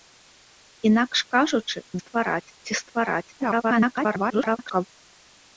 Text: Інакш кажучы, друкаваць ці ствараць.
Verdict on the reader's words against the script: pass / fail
fail